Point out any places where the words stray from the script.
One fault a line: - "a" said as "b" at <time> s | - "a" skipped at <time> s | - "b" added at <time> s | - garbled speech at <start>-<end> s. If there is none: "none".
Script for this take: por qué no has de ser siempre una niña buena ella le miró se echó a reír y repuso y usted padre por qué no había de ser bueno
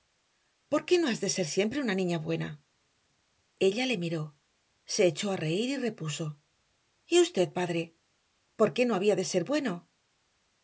none